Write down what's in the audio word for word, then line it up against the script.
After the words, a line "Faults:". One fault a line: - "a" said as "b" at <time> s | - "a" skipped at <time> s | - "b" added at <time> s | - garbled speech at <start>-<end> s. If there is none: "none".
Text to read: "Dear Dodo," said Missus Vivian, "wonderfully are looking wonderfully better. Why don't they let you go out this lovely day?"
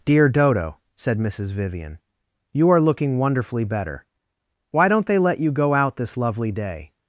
"Dear Dodo," said Missus Vivian, "you are looking wonderfully better. Why don't they let you go out this lovely day?"
Faults:
- "wonderfully" said as "you" at 2.5 s